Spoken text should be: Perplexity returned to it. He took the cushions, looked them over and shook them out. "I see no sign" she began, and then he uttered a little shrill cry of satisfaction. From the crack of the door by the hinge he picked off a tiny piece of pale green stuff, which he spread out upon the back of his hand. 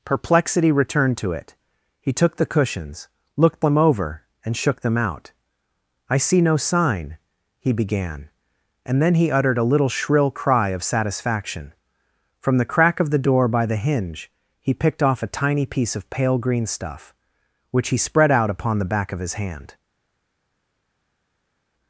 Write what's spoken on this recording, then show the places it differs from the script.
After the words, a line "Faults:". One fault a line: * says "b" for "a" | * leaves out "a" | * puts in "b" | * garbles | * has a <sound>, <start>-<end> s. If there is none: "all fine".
Perplexity returned to it. He took the cushions, looked them over and shook them out. "I see no sign" he began, and then he uttered a little shrill cry of satisfaction. From the crack of the door by the hinge he picked off a tiny piece of pale green stuff, which he spread out upon the back of his hand.
Faults:
* says "he" for "she"